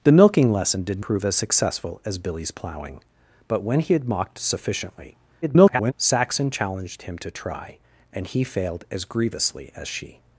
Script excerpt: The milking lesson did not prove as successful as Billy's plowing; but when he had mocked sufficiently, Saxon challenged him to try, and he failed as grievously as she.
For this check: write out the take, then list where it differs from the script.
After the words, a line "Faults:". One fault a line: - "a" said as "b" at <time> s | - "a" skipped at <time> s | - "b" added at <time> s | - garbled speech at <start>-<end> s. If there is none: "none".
The milking lesson did prove as successful as Billy's plowing; but when he had mocked sufficiently, [garbled] Saxon challenged him to try, and he failed as grievously as she.
Faults:
- "not" skipped at 1.1 s
- garbled speech at 5.4-5.9 s